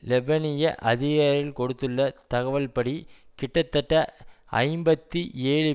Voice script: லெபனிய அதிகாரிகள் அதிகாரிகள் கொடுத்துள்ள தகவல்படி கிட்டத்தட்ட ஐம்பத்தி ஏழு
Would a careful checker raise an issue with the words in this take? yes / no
yes